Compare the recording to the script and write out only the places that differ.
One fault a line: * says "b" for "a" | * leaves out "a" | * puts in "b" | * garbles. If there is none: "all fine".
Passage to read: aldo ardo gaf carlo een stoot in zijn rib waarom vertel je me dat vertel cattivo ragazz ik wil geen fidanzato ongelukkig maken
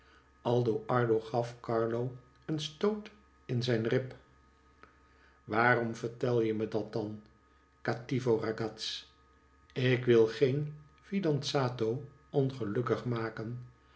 * says "dan" for "vertel"